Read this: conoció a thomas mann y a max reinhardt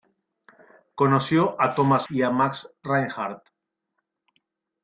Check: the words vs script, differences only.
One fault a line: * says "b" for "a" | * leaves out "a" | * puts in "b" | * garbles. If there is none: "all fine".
* leaves out "mann"